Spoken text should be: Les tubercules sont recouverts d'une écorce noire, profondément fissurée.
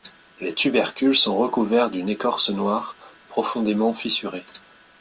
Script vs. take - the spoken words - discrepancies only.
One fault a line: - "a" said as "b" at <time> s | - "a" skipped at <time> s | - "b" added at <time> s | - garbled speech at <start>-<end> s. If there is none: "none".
none